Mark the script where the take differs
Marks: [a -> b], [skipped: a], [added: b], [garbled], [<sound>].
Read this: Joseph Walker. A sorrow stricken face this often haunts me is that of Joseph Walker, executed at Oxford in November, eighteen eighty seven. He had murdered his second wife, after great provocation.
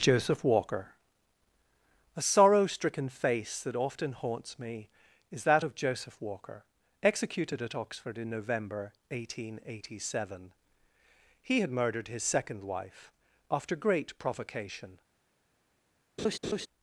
Joseph Walker. A sorrow stricken face [this -> that] often haunts me is that of Joseph Walker, executed at Oxford in November, eighteen eighty seven. He had murdered his second wife, after great provocation. [laugh]